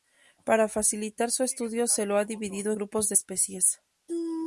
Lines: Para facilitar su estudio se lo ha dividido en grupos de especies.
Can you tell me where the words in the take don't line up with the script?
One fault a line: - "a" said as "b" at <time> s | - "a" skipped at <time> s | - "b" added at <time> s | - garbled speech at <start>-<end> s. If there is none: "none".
- "en" skipped at 2.7 s